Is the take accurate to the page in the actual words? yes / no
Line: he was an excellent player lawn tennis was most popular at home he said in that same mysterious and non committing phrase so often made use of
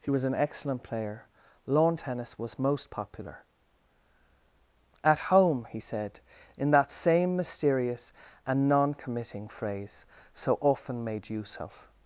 yes